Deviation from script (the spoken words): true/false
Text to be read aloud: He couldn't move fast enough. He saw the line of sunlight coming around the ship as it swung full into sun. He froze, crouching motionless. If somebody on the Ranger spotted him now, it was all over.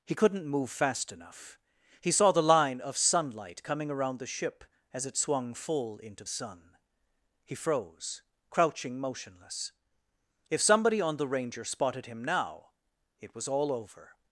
false